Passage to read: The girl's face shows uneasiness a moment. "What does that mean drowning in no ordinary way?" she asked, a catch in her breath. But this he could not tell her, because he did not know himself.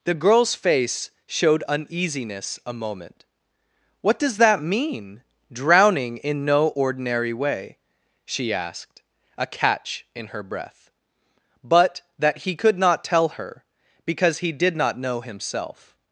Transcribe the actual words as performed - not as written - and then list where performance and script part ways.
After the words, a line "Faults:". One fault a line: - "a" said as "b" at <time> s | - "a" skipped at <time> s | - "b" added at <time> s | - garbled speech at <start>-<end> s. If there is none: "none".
The girl's face showed uneasiness a moment. "What does that mean drowning in no ordinary way?" she asked, a catch in her breath. But that he could not tell her, because he did not know himself.
Faults:
- "shows" said as "showed" at 1.3 s
- "this" said as "that" at 12.2 s